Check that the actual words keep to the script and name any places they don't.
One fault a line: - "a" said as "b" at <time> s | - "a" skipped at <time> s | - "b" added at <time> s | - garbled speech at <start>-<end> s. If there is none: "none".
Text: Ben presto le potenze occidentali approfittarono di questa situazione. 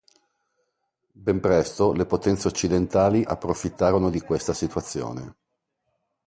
none